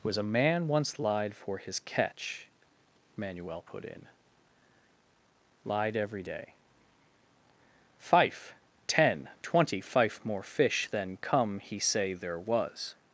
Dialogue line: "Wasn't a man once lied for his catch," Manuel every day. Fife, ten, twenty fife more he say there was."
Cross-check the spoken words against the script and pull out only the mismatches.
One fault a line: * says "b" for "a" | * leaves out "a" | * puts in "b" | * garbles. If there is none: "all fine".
* says "Was" for "Wasn't"
* puts in "put in Lied"
* puts in "fish than come"